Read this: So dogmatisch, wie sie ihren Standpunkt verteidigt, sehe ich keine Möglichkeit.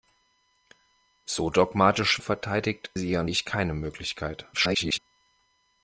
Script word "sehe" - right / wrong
wrong